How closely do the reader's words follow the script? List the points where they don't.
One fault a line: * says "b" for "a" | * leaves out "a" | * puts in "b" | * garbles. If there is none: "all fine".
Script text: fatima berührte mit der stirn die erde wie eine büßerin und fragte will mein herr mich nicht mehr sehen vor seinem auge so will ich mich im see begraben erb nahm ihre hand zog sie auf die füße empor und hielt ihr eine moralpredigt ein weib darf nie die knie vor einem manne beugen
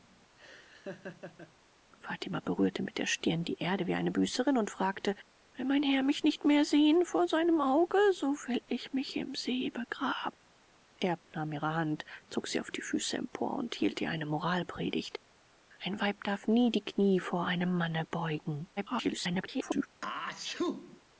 * garbles